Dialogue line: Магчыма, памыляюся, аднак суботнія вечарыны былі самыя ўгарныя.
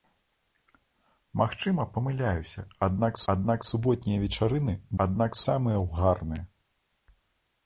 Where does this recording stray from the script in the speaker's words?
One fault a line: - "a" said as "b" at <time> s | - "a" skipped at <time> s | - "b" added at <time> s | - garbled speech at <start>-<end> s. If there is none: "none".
- "аднак" added at 3.3 s
- "былі" said as "аднак" at 5.0 s